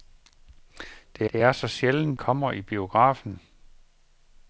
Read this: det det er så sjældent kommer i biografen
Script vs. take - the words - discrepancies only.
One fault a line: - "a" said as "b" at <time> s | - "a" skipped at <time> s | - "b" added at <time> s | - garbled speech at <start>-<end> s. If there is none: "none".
none